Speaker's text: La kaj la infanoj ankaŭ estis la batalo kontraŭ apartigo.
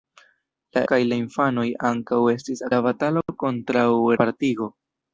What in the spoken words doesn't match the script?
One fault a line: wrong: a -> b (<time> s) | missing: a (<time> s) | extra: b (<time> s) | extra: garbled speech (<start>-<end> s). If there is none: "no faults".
no faults